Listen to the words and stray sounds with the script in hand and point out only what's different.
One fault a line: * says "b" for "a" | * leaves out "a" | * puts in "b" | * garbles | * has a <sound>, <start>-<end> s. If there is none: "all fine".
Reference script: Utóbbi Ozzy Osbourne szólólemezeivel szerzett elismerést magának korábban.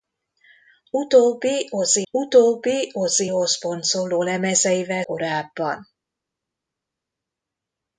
* puts in "utóbbi Ozzy"
* leaves out "szerzett elismerést magának"